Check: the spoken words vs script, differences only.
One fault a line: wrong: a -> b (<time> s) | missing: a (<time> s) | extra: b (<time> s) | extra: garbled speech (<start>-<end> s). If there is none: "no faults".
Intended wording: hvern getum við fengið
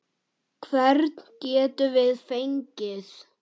no faults